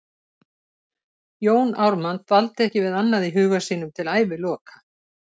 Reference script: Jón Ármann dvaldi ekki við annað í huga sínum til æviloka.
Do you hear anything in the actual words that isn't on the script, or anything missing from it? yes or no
no